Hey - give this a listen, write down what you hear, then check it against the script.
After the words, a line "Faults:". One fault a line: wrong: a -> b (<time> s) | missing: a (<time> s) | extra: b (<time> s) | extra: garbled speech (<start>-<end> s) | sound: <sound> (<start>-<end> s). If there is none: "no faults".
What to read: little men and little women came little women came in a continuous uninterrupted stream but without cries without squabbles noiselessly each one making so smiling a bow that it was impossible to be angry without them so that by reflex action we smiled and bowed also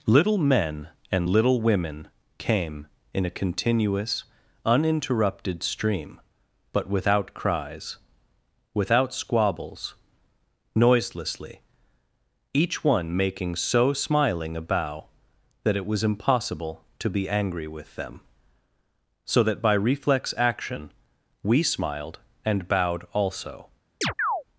little men and little women came in a continuous uninterrupted stream but without cries without squabbles noiselessly each one making so smiling a bow that it was impossible to be angry with them so that by reflex action we smiled and bowed also
Faults:
missing: little women came (2.9 s)
wrong: without -> with (17.7 s)
sound: chirp (24.0-24.4 s)